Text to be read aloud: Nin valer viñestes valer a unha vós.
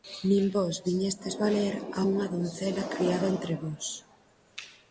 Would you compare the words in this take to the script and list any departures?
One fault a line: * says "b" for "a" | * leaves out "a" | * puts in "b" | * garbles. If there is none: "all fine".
* says "vós" for "valer"
* puts in "doncela criada entre"